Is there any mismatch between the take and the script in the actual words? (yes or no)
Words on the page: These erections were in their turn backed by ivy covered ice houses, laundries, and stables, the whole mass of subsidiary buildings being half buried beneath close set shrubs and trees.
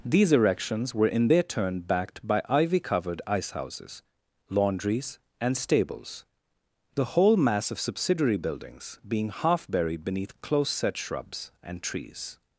no